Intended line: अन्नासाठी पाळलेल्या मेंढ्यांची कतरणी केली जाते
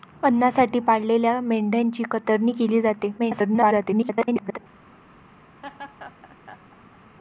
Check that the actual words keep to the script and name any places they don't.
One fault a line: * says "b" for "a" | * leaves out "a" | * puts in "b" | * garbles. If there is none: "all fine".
* garbles